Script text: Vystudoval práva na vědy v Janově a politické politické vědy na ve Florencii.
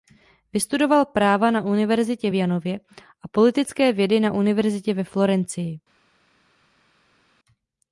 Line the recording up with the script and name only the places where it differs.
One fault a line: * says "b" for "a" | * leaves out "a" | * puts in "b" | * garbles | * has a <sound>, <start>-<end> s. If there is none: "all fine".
* says "univerzitě" for "vědy"
* leaves out "politické"
* puts in "univerzitě"